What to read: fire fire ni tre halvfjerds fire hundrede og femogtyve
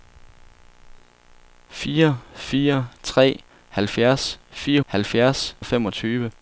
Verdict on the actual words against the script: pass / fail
fail